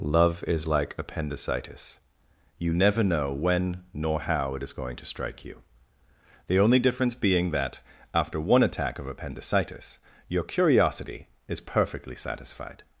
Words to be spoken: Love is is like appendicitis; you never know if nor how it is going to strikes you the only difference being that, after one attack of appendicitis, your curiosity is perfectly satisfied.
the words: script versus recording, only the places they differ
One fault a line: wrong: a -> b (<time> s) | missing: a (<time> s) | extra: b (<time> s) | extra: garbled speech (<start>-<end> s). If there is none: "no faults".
missing: is (0.7 s)
wrong: if -> when (3.3 s)
wrong: strikes -> strike (5.0 s)